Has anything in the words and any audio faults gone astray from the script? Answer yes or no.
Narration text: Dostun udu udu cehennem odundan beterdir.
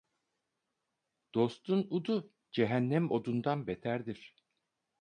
yes